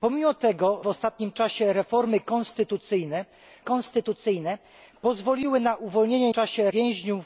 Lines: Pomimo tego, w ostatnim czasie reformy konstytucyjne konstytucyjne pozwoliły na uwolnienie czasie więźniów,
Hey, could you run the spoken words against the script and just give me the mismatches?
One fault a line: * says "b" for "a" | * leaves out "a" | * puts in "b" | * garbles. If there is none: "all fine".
all fine